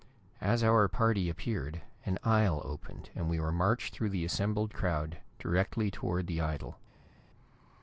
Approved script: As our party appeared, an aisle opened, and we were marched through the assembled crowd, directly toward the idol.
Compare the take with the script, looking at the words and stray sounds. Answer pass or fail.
pass